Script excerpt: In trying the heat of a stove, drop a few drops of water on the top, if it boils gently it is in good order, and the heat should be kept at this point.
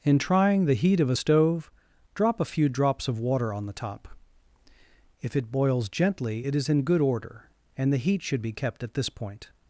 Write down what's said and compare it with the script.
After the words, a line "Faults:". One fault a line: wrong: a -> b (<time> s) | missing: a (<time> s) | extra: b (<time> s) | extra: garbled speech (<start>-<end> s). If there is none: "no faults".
In trying the heat of a stove, drop a few drops of water on the top, if it boils gently it is in good order, and the heat should be kept at this point.
Faults:
no faults